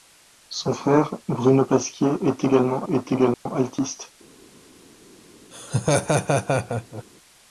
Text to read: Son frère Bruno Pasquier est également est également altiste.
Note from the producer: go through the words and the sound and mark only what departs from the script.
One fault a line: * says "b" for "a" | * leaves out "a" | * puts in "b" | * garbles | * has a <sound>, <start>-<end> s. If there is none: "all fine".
* has a dropout, 3.3-3.5 s
* has a laugh, 5.5-7.0 s